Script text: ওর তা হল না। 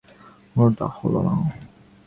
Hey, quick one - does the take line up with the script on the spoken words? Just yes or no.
yes